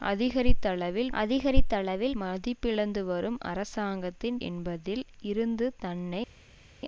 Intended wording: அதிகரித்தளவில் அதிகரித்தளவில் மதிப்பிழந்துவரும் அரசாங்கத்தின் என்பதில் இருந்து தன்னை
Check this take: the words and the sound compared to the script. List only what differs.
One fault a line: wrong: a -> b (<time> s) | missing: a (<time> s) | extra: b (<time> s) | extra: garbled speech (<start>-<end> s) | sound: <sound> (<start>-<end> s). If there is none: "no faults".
no faults